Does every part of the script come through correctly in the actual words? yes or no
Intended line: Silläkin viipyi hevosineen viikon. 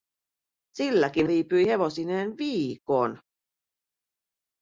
yes